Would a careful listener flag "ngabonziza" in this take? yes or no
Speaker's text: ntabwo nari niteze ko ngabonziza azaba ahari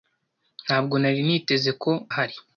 yes